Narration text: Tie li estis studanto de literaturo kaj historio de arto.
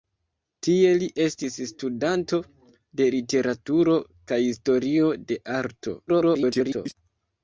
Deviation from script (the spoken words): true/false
true